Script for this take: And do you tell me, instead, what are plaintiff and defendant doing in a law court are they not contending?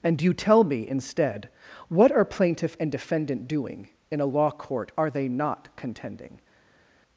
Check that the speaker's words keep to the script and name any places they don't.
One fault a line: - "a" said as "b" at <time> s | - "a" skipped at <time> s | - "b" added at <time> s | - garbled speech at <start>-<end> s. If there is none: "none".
- "do" skipped at 0.2 s